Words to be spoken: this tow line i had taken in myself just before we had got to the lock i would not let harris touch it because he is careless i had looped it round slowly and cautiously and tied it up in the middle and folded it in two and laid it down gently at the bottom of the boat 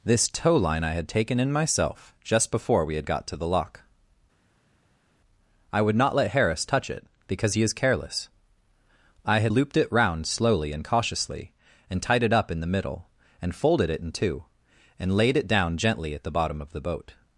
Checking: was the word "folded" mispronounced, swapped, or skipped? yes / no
no